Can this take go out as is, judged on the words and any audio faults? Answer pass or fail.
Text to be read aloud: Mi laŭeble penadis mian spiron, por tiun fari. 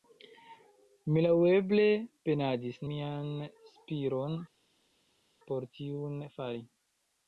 pass